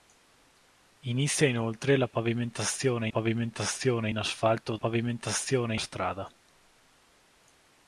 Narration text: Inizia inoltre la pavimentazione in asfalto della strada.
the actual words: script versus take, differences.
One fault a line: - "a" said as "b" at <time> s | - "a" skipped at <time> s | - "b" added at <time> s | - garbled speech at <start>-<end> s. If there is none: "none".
- "pavimentazione" added at 3.1 s
- "della" said as "pavimentazione" at 4.7 s